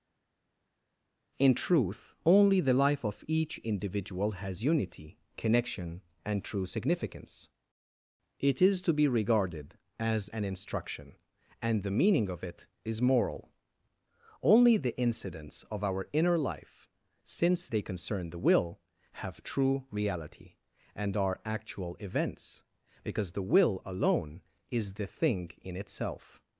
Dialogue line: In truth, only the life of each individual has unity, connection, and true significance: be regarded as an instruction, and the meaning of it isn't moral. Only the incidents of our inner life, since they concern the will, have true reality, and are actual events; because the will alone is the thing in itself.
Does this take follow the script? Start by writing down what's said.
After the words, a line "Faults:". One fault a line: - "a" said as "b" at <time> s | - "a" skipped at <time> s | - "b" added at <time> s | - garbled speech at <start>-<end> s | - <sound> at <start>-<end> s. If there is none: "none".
In truth, only the life of each individual has unity, connection, and true significance: it is to be regarded as an instruction, and the meaning of it is moral. Only the incidents of our inner life, since they concern the will, have true reality, and are actual events; because the will alone is the thing in itself.
Faults:
- "it is to" added at 8.4 s
- "isn't" said as "is" at 12.8 s